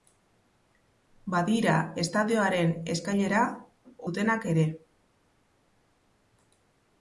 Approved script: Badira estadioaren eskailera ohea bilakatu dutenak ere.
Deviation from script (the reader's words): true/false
true